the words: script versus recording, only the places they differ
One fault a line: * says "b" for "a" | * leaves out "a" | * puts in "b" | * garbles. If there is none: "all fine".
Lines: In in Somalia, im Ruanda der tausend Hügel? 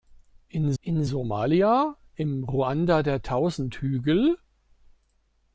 all fine